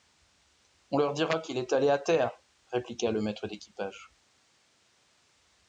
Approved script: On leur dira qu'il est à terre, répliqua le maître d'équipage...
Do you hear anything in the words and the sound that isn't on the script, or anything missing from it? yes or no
yes